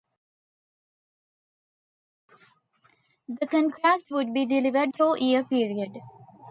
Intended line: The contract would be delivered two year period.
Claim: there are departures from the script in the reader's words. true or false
false